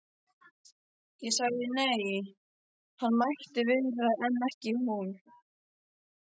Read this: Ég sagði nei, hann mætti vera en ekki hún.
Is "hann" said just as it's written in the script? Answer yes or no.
yes